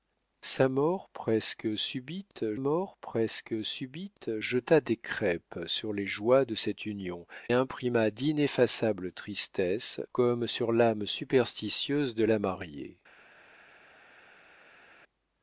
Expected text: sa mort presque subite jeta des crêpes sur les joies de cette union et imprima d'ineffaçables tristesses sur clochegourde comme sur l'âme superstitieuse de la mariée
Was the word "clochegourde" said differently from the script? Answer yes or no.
yes